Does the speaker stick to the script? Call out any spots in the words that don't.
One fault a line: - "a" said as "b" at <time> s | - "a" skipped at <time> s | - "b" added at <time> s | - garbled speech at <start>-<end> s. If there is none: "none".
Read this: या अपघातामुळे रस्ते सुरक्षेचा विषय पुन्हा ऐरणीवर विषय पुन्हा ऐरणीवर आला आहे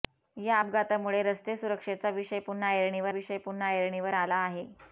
none